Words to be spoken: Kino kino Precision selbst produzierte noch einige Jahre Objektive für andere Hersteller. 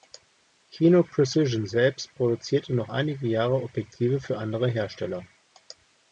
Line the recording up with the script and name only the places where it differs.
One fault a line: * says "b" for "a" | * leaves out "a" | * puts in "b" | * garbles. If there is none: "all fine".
* leaves out "kino"